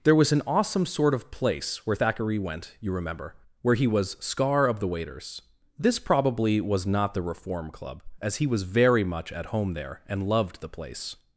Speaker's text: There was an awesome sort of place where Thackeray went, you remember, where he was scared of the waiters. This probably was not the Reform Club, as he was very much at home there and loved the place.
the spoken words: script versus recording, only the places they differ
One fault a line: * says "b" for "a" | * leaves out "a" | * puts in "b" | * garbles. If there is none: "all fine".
* says "scar" for "scared"